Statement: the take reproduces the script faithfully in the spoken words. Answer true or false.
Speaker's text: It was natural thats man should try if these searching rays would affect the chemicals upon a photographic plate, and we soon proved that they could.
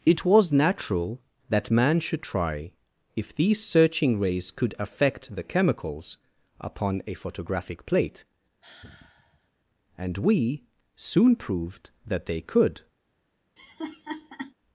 false